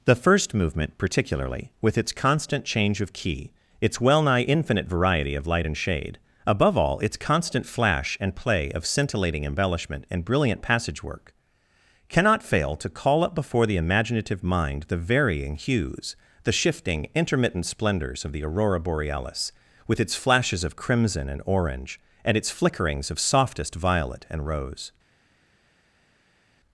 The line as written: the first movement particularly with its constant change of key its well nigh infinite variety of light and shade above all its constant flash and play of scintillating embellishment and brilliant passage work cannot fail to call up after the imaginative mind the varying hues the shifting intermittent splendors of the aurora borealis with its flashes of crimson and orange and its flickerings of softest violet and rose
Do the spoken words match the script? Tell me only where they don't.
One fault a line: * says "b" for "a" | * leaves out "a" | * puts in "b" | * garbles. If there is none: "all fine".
* says "before" for "after"